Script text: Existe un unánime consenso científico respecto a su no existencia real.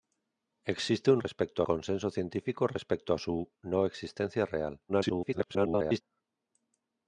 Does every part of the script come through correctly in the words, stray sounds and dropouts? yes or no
no